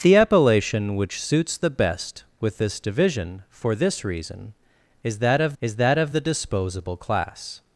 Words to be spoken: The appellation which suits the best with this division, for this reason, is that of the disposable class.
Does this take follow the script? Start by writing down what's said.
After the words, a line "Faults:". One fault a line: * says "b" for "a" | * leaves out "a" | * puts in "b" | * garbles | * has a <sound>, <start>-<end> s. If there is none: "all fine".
The appellation which suits the best with this division, for this reason, is that of is that of the disposable class.
Faults:
* puts in "is that of"